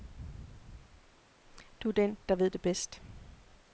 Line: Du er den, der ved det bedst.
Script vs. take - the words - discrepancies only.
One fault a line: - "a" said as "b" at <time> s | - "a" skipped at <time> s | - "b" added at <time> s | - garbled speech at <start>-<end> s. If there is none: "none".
none